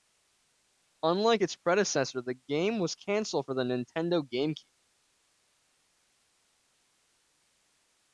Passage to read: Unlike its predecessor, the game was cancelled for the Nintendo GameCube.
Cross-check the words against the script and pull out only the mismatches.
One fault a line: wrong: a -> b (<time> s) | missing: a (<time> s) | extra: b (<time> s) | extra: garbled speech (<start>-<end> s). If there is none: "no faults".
no faults